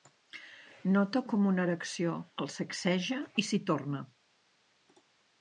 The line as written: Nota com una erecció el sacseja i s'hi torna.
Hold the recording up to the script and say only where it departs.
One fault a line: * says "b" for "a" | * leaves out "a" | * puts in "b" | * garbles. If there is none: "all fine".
all fine